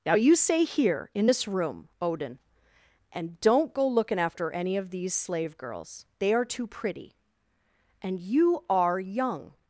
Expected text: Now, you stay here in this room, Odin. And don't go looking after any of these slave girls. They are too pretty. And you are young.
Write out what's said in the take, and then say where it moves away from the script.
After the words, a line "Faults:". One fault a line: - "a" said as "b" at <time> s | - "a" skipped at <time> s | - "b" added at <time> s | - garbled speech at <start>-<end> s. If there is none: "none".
Now, you stay here in this room, Odin. And don't go looking after any of these slave girls. They are too pretty. And you are young.
Faults:
none